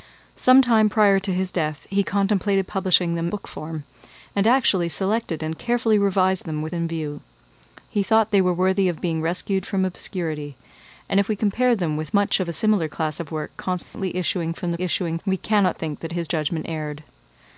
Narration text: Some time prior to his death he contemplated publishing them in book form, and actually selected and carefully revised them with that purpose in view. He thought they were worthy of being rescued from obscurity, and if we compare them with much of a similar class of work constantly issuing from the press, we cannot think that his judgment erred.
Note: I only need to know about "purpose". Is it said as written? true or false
false